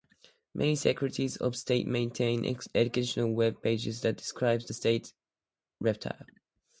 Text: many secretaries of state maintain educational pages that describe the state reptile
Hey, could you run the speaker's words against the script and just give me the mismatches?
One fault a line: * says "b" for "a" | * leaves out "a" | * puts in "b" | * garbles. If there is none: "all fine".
* puts in "web"